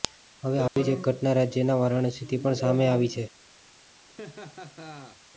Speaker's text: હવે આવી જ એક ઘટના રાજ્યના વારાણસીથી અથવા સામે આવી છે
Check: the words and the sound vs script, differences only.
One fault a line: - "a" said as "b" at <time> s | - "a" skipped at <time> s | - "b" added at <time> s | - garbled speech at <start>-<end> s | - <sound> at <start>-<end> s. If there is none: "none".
- dropout at 0.7-0.8 s
- "અથવા" said as "પણ" at 2.4 s
- laugh at 4.0-5.2 s